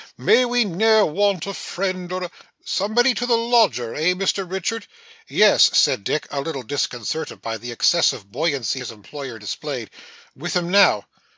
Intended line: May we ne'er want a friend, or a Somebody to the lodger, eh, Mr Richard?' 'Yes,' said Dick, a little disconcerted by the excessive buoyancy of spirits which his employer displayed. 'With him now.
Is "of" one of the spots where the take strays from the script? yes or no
yes